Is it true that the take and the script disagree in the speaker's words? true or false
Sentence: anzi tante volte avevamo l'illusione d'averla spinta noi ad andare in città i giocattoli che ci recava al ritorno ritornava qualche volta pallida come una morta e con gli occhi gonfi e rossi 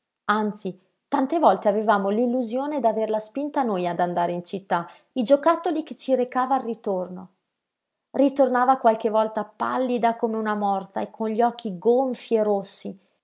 false